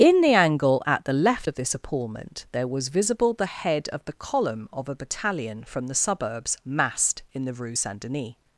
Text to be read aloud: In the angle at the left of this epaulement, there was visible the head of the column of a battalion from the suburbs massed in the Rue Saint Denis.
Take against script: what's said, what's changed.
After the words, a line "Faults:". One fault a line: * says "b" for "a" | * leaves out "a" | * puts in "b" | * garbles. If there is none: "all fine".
In the angle at the left of this epaulement, there was visible the head of the column of a battalion from the suburbs massed in the Rue Saint Denis.
Faults:
all fine